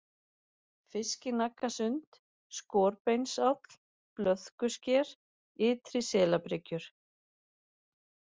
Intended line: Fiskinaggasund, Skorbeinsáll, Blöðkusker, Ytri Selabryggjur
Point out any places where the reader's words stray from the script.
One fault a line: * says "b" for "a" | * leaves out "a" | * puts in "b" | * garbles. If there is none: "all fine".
all fine